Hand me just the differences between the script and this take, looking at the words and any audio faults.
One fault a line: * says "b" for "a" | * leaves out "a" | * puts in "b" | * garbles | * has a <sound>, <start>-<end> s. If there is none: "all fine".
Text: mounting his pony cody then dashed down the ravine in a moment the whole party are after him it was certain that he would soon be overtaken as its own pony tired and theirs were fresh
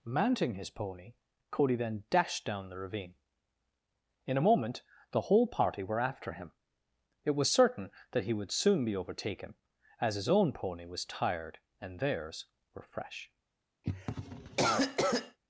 * says "were" for "are"
* says "his" for "its"
* puts in "was"
* has a cough, 13.8-15.4 s